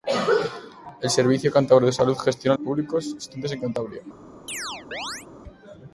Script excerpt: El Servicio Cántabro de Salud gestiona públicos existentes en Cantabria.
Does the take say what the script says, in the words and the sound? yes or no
no